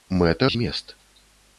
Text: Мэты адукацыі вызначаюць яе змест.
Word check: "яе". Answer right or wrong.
wrong